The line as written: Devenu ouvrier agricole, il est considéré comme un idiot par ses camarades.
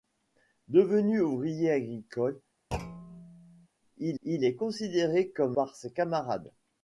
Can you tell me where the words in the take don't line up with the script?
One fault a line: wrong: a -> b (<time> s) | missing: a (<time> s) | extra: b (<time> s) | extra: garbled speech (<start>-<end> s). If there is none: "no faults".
extra: il (4.2 s)
missing: un idiot (5.6 s)